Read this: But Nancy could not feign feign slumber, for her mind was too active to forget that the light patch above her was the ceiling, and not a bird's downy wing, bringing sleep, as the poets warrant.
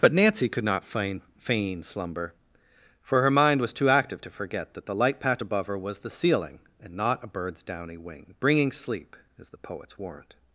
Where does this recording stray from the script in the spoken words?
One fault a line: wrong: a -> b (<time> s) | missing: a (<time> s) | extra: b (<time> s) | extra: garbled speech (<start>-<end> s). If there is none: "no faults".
no faults